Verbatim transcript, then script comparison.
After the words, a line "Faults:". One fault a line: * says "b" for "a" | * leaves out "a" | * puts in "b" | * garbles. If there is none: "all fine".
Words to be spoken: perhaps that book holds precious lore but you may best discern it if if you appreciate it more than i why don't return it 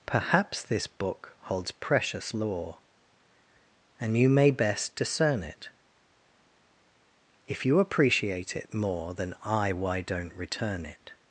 perhaps this book holds precious lore and you may best discern it if you appreciate it more than i why don't return it
Faults:
* says "this" for "that"
* says "and" for "but"
* leaves out "if"